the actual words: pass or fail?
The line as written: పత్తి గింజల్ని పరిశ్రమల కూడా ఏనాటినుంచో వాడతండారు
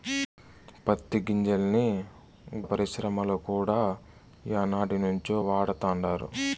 pass